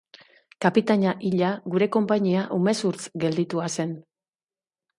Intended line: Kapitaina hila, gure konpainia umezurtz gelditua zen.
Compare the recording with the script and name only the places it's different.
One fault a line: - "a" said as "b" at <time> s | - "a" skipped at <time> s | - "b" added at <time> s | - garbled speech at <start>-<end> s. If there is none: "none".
none